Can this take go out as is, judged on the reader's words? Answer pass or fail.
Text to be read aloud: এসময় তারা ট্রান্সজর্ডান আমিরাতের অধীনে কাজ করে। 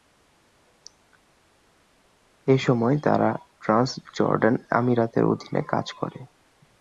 pass